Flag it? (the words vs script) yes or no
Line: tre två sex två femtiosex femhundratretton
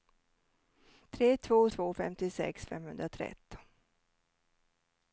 yes